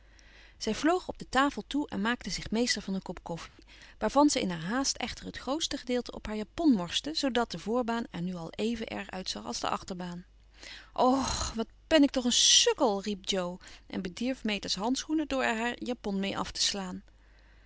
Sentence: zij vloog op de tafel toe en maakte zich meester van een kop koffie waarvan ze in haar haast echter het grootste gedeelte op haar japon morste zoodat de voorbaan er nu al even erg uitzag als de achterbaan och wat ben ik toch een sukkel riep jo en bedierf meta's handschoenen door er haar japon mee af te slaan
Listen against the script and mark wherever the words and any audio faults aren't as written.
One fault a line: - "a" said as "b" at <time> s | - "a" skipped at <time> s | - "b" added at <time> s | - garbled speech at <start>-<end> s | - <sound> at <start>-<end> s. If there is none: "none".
- dropout at 3.5-3.6 s